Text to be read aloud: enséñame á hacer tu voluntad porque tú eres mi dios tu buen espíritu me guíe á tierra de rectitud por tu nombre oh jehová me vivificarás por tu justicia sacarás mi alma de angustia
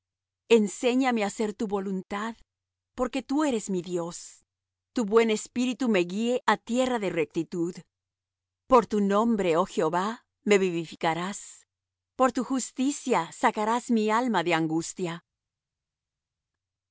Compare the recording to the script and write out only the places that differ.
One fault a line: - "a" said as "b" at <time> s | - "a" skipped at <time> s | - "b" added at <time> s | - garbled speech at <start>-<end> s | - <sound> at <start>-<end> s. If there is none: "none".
none